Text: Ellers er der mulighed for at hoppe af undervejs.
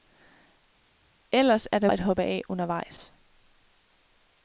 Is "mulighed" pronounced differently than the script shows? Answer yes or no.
yes